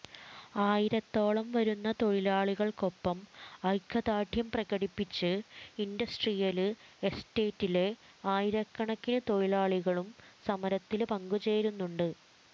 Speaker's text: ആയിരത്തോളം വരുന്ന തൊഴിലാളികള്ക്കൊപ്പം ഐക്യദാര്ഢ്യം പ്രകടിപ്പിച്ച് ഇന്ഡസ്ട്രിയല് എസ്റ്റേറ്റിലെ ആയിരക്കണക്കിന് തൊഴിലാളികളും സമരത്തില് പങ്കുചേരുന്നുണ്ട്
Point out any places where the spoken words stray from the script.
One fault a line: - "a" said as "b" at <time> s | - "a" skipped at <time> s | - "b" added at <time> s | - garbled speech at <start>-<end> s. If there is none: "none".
none